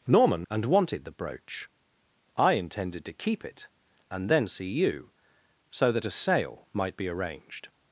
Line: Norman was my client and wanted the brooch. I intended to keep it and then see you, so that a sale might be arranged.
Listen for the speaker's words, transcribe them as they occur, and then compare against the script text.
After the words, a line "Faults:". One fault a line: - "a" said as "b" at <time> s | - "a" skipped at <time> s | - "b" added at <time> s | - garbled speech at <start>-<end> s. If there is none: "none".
Norman and wanted the brooch. I intended to keep it and then see you, so that a sale might be arranged.
Faults:
- "was my client" skipped at 0.5 s